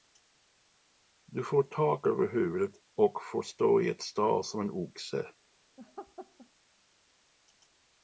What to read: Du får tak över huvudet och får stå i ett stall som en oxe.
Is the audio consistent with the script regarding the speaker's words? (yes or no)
yes